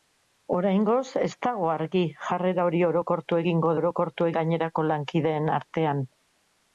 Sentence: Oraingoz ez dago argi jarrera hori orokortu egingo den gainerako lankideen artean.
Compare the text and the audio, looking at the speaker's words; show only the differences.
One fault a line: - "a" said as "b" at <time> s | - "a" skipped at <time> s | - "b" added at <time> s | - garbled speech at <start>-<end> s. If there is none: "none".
- "den" said as "orokortu" at 3.8 s